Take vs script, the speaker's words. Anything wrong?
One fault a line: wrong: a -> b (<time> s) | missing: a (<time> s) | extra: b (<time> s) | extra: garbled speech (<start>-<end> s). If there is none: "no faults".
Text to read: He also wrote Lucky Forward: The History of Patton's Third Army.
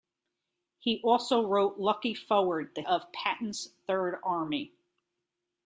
missing: History (2.8 s)